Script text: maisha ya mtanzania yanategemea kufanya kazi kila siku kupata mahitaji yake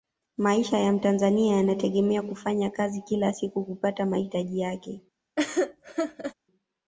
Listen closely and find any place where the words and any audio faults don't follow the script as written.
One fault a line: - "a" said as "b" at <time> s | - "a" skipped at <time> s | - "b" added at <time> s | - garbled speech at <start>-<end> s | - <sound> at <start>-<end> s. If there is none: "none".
- laugh at 5.4-6.3 s